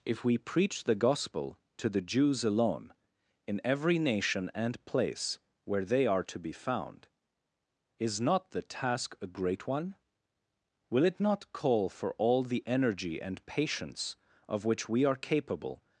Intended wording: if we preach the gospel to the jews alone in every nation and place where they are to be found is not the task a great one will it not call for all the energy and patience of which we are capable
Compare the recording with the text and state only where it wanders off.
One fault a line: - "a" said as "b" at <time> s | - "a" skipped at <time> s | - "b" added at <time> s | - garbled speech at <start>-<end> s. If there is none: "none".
none